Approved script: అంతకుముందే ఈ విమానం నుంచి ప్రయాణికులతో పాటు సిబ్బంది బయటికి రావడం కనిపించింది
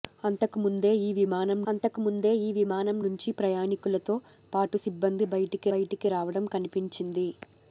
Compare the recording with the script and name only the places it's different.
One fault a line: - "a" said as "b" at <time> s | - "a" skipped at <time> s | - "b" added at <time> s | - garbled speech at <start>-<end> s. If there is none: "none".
- "అంతకుముందే ఈ విమానం" added at 1.7 s
- "బయటికి" added at 5.7 s